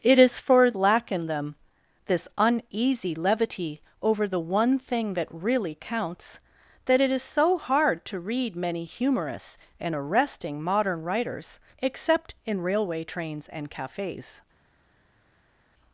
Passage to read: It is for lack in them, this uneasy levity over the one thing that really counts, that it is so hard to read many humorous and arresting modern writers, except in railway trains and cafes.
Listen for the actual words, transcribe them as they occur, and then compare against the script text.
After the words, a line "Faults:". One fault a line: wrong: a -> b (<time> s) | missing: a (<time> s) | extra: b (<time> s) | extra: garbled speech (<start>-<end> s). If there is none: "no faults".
It is for lack in them, this uneasy levity over the one thing that really counts, that it is so hard to read many humorous and arresting modern writers, except in railway trains and cafes.
Faults:
no faults